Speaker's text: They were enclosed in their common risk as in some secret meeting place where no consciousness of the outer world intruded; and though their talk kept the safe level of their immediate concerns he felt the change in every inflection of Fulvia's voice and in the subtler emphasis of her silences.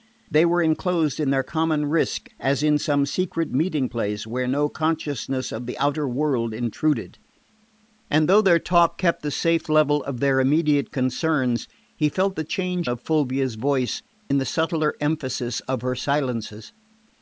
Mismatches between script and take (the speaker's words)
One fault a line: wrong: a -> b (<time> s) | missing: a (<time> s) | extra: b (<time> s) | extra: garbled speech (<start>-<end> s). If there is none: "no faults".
missing: in every inflection (12.9 s)
missing: and (14.0 s)